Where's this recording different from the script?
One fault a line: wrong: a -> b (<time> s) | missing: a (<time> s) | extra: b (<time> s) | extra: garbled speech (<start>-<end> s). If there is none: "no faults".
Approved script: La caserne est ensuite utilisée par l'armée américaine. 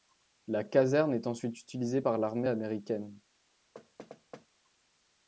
no faults